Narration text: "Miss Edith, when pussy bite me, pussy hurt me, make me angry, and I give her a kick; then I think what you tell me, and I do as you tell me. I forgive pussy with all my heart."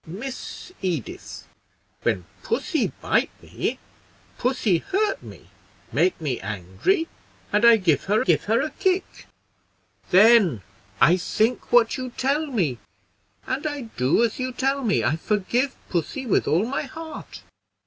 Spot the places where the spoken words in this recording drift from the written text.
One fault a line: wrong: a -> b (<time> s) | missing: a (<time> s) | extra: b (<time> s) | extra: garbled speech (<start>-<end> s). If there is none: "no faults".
extra: give her (8.2 s)